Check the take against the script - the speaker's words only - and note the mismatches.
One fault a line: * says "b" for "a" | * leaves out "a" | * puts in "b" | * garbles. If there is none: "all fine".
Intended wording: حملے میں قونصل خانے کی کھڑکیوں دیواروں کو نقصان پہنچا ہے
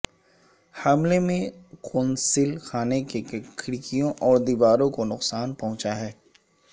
* puts in "اور"